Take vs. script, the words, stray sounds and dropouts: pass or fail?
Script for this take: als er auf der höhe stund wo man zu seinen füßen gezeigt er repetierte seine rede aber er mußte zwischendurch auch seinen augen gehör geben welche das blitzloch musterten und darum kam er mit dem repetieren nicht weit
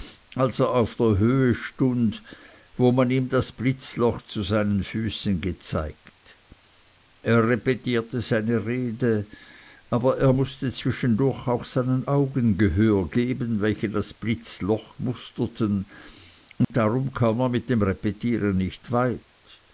fail